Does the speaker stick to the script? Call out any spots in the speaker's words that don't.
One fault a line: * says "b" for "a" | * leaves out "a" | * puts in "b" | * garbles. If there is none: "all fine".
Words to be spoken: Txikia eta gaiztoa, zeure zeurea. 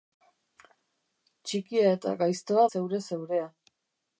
all fine